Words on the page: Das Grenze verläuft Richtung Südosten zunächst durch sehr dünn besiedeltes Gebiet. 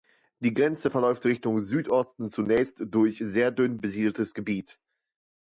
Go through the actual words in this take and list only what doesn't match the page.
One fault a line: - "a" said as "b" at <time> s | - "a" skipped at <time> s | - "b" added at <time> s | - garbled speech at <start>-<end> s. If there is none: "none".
- "Das" said as "Die" at 0.4 s